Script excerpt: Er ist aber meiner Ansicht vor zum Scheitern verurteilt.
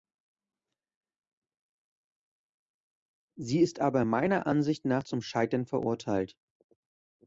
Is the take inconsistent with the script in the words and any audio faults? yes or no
yes